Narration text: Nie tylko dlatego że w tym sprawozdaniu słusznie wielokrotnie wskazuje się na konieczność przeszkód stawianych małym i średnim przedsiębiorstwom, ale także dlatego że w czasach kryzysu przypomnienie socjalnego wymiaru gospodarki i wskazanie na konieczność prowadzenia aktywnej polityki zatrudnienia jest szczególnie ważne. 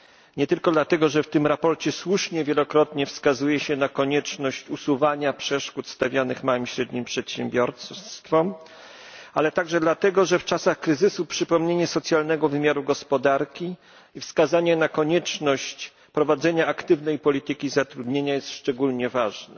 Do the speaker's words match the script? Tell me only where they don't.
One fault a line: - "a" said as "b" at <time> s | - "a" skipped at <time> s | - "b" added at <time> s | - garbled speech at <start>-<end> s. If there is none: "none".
- "usuwania" added at 4.7 s